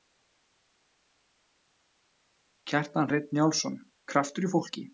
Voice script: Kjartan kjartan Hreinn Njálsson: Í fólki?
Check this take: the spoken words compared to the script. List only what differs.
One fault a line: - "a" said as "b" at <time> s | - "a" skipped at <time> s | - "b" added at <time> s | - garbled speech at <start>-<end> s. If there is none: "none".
- "kjartan" skipped at 3.1 s
- "Kraftur" added at 4.1 s